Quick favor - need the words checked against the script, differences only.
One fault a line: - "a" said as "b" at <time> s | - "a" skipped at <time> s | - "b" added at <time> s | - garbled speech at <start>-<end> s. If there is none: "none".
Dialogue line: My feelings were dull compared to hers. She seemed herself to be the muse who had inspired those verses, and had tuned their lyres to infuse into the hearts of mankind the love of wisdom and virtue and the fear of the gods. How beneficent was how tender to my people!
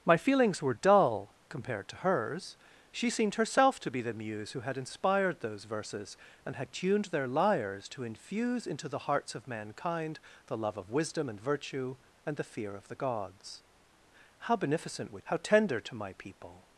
none